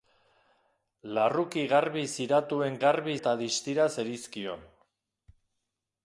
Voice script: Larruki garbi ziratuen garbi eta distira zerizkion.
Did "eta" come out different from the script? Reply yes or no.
no